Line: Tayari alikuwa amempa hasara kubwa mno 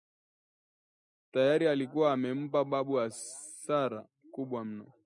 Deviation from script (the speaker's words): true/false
true